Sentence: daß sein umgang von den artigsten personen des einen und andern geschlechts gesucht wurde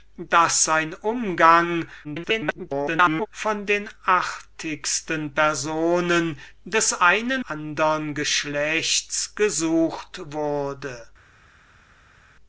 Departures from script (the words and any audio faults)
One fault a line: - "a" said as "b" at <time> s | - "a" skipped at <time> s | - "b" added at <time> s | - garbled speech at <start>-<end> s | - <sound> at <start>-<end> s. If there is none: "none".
- garbled speech at 2.0-3.3 s
- "und" skipped at 7.4 s